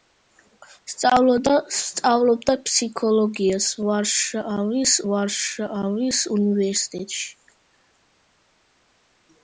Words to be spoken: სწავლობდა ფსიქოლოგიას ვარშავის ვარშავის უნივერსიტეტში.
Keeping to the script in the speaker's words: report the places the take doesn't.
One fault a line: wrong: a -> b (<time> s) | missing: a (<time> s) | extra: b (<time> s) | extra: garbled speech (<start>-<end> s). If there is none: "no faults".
no faults